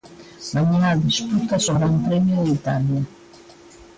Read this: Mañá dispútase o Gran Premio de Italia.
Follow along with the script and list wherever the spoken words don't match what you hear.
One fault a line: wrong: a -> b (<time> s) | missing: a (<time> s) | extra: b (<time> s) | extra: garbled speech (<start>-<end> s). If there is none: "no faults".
no faults